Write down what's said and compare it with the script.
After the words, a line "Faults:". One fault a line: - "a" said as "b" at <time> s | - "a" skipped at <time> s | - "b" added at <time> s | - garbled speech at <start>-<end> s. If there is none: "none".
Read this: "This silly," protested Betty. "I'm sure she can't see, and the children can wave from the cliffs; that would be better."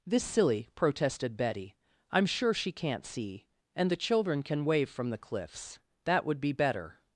"This silly," protested Betty. "I'm sure she can't see, and the children can wave from the cliffs; that would be better."
Faults:
none